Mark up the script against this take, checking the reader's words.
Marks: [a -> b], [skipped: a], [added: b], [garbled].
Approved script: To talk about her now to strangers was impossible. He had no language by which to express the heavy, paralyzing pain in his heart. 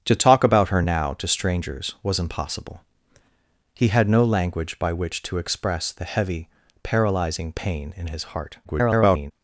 To talk about her now to strangers was impossible. He had no language by which to express the heavy, paralyzing pain in his heart. [garbled]